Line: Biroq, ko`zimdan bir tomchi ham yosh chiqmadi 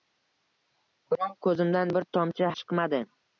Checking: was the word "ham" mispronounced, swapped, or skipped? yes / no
yes